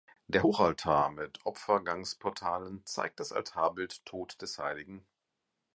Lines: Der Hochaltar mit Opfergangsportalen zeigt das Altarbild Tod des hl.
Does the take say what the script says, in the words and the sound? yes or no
yes